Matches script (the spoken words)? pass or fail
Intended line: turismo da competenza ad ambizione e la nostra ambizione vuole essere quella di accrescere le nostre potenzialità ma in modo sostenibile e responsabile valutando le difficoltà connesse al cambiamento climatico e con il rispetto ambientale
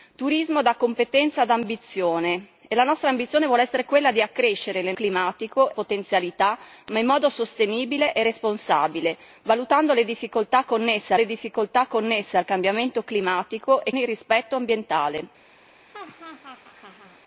fail